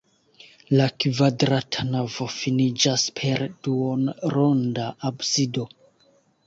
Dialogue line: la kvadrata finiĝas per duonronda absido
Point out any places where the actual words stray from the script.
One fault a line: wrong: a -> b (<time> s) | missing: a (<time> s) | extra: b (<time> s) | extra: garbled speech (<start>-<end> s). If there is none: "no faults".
extra: navo (1.9 s)